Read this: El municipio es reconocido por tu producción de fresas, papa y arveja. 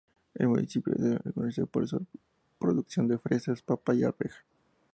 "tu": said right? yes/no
no